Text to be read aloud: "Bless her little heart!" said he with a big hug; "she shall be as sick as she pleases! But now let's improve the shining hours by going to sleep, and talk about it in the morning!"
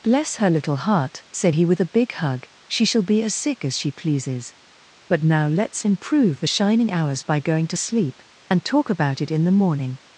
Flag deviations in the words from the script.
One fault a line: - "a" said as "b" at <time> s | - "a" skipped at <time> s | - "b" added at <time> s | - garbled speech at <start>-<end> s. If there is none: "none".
none